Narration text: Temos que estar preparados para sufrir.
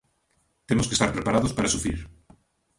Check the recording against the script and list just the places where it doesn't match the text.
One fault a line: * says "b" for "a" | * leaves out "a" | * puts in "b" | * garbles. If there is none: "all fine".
all fine